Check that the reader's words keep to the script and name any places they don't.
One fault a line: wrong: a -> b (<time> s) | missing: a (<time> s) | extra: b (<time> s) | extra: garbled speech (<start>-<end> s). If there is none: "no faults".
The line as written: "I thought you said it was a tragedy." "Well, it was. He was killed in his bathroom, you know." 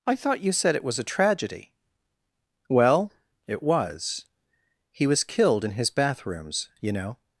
wrong: bathroom -> bathrooms (5.9 s)